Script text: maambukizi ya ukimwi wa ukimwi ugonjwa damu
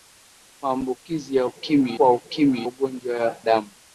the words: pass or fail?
pass